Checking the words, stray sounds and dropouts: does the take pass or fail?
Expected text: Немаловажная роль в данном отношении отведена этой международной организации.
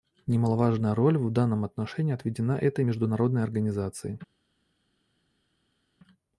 pass